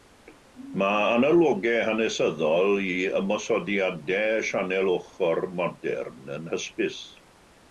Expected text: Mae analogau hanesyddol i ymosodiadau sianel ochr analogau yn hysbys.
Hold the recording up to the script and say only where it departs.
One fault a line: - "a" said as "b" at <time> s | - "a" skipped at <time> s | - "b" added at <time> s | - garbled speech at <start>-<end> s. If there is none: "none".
- "analogau" said as "modern" at 5.6 s